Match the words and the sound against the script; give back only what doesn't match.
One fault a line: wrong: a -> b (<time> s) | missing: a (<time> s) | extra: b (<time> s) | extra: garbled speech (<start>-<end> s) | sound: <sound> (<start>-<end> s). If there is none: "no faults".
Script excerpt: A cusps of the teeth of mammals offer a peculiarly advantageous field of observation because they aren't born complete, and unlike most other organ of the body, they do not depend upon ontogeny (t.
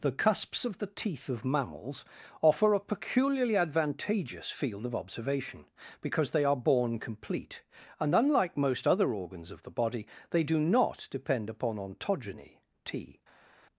wrong: A -> The (0.0 s)
wrong: aren't -> are (6.5 s)
wrong: organ -> organs (9.1 s)